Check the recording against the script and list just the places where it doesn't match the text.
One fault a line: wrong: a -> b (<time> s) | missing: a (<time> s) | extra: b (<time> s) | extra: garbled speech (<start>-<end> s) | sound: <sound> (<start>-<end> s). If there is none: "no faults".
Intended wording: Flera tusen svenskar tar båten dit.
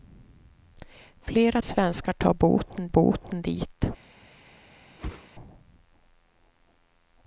missing: tusen (1.6 s)
extra: båten (2.9 s)
sound: whoosh (5.0-5.3 s)